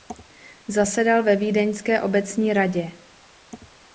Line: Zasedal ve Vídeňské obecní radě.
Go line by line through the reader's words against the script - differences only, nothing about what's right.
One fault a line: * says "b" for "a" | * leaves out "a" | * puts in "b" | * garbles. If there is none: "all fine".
all fine